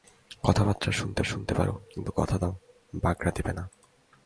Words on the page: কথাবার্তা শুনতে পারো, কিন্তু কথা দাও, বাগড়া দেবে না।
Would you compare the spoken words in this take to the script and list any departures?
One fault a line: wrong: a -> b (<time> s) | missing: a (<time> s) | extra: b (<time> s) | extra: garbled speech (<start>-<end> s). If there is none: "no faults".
extra: শুনতে (1.2 s)